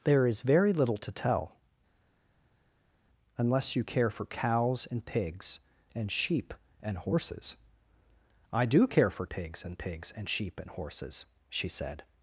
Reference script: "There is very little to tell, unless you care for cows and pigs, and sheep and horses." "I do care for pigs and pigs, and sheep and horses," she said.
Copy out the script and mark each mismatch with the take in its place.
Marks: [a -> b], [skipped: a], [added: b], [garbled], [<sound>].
"There is very little to tell, unless you care for cows and pigs, and sheep and horses." "I do care for pigs and pigs, and sheep and horses," she said.